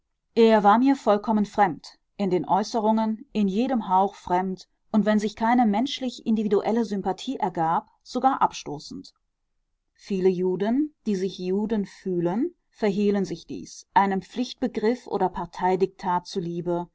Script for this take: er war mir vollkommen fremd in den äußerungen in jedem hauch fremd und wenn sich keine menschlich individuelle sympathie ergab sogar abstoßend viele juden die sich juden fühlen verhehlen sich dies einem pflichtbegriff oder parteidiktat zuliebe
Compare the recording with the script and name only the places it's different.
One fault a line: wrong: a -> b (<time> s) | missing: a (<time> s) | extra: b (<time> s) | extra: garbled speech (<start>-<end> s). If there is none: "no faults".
no faults